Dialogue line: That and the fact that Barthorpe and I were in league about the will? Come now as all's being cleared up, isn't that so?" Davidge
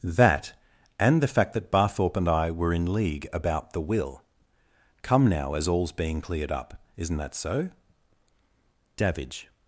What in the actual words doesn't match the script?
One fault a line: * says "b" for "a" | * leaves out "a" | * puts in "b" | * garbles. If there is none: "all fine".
all fine